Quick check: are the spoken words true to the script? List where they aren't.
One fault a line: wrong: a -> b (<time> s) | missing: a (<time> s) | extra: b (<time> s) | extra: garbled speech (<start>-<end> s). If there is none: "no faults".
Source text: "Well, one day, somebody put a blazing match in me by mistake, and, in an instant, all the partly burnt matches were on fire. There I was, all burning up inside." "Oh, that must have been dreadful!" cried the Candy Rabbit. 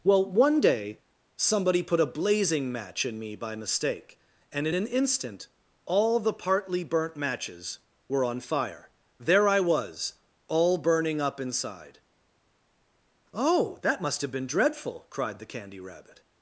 no faults